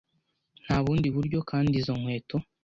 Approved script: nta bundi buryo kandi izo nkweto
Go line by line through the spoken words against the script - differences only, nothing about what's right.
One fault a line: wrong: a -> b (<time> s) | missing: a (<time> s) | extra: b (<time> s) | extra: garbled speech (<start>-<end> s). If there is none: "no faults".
no faults